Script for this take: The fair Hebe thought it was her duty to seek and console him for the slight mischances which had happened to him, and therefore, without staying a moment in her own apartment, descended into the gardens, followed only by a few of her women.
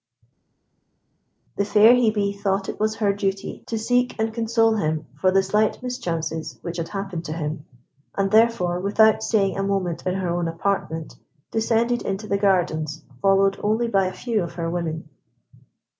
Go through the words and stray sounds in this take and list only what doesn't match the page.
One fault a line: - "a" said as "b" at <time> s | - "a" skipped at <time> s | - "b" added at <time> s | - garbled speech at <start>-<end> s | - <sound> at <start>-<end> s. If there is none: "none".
none